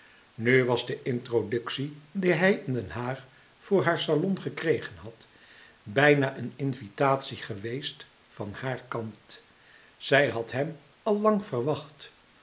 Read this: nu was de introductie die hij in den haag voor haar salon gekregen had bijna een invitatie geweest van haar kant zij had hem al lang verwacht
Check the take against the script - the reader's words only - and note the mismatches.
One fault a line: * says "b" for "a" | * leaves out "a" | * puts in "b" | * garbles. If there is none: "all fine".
all fine